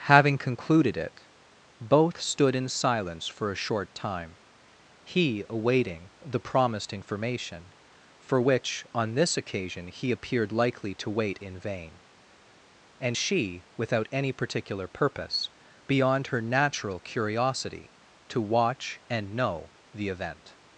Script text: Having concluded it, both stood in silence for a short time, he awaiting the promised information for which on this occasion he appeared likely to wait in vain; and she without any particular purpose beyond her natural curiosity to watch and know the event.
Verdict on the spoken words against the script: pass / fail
pass